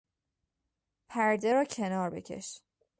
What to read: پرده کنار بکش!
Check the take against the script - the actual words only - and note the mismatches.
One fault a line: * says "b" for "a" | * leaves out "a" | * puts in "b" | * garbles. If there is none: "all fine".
* puts in "را"